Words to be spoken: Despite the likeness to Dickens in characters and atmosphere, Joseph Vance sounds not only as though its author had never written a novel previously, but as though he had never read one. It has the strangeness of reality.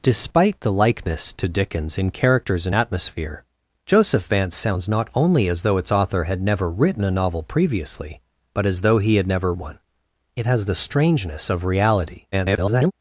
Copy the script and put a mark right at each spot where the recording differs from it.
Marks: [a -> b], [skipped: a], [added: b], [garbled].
Despite the likeness to Dickens in characters and atmosphere, Joseph Vance sounds not only as though its author had never written a novel previously, but as though he had never [skipped: read] one. It has the strangeness of reality. [garbled]